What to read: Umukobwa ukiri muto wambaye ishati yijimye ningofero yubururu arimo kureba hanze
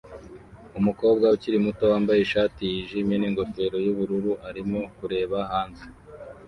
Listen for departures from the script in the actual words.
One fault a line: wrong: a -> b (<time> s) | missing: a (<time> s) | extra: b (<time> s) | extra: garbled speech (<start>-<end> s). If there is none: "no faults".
no faults